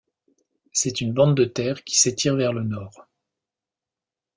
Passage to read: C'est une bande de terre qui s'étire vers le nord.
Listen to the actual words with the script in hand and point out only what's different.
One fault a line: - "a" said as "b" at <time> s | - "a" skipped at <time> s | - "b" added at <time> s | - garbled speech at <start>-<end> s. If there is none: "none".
none